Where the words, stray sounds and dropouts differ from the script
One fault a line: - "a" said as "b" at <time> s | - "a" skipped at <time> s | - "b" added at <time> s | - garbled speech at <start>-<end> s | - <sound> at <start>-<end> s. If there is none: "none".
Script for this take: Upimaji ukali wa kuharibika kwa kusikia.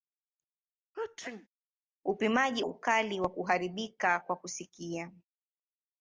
- sneeze at 0.9-1.5 s